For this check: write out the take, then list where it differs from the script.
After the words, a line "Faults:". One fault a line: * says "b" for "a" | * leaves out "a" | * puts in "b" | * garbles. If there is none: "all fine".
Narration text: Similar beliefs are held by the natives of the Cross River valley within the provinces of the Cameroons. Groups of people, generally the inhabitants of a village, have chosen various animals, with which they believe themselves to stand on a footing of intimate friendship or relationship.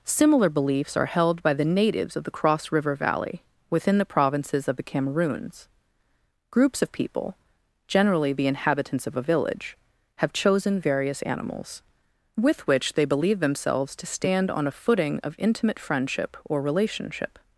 Similar beliefs are held by the natives of the Cross River valley within the provinces of the Cameroons. Groups of people, generally the inhabitants of a village, have chosen various animals, with which they believe themselves to stand on a footing of intimate friendship or relationship.
Faults:
all fine